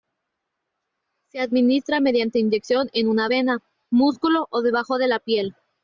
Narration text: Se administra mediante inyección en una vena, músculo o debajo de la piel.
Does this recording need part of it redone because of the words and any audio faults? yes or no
no